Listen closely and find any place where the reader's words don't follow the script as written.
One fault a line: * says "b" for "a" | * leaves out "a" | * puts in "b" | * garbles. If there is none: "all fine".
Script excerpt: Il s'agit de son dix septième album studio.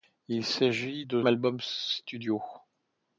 * leaves out "son dix septième"